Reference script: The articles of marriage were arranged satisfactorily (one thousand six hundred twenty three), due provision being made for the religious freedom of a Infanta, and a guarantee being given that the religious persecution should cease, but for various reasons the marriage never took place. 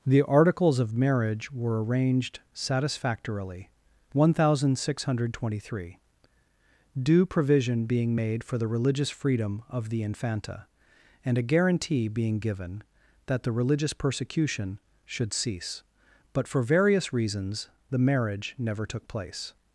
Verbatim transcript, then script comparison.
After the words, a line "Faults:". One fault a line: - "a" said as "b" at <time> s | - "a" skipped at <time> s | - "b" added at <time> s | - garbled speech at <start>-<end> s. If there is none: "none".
The articles of marriage were arranged satisfactorily (one thousand six hundred twenty three), due provision being made for the religious freedom of the Infanta, and a guarantee being given that the religious persecution should cease, but for various reasons the marriage never took place.
Faults:
- "a" said as "the" at 9.9 s